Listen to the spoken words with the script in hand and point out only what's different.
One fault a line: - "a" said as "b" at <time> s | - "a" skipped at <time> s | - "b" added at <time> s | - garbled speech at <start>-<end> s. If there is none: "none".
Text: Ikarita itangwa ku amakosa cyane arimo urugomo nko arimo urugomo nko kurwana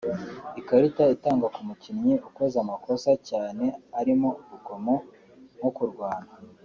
- "mukinnyi ukoze" added at 1.7 s
- "arimo urugomo nko" skipped at 5.7 s